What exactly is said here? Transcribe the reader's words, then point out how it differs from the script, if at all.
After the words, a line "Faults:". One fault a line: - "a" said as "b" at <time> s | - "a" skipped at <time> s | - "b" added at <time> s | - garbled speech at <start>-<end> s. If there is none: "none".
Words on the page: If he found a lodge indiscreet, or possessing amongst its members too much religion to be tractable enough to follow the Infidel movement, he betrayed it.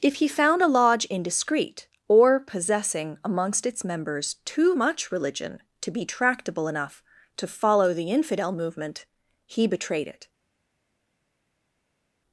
If he found a lodge indiscreet, or possessing amongst its members too much religion to be tractable enough to follow the Infidel movement, he betrayed it.
Faults:
none